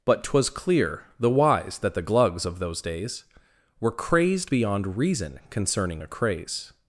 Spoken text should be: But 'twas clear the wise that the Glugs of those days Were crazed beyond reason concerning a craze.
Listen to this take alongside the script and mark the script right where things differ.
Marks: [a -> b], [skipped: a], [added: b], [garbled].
But 'twas clear the wise that the Glugs of those days Were crazed beyond reason concerning a craze.